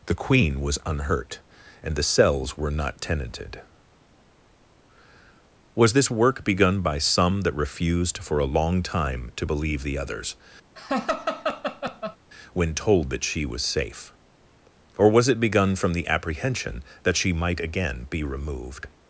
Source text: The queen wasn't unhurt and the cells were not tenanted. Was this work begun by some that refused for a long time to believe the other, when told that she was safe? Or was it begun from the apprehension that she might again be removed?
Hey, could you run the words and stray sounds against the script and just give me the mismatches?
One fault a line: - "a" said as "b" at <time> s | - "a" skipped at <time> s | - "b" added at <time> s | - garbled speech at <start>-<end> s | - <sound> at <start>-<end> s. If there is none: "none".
- "wasn't" said as "was" at 0.6 s
- "other" said as "others" at 10.0 s
- laugh at 10.8-12.2 s